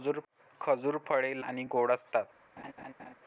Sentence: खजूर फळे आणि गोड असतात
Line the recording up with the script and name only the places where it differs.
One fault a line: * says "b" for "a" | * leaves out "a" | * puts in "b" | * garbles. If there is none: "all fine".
all fine